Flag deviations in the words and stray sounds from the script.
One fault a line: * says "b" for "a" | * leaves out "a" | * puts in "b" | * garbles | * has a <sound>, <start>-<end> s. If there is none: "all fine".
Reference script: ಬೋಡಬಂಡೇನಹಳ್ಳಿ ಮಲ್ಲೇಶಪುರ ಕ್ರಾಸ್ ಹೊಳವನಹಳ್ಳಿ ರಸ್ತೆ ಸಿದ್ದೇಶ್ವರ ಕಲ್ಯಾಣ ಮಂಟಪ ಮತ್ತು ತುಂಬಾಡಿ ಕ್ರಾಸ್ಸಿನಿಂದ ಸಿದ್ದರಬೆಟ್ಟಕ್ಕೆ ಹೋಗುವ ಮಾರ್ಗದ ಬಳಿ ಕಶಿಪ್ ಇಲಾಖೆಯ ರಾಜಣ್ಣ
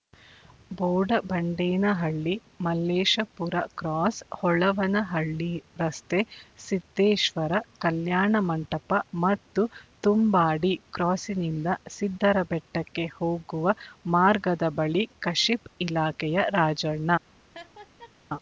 * has a laugh, 17.5-18.1 s